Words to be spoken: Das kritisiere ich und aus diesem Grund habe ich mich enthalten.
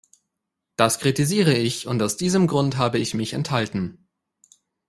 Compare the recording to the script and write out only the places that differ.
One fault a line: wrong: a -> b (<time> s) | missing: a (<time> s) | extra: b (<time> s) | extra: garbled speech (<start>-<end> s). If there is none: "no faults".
no faults